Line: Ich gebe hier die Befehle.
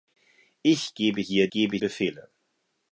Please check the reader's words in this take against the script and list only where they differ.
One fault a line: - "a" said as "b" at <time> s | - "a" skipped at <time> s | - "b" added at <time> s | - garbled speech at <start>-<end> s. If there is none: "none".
- "die" said as "gebe" at 1.5 s